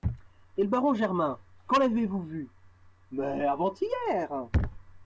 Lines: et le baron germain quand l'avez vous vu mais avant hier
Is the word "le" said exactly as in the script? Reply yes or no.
yes